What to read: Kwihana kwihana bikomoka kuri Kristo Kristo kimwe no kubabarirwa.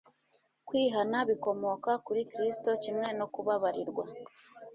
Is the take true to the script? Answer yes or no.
no